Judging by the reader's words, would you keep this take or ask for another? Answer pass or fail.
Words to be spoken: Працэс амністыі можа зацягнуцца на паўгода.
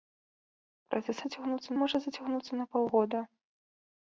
fail